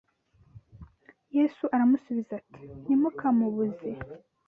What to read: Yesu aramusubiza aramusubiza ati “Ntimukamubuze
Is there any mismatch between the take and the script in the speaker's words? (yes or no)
yes